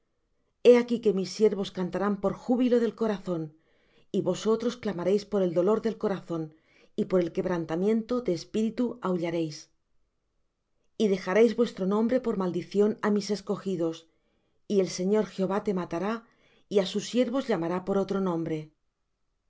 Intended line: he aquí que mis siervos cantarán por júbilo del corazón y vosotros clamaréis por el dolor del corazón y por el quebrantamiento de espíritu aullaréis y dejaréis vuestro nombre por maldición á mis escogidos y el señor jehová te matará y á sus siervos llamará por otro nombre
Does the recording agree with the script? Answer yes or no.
yes